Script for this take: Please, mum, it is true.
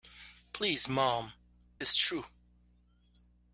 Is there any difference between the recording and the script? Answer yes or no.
yes